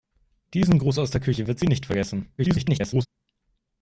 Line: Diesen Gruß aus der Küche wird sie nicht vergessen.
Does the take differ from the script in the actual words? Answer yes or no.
yes